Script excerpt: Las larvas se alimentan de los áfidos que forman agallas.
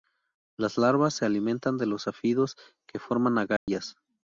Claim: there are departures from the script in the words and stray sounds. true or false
true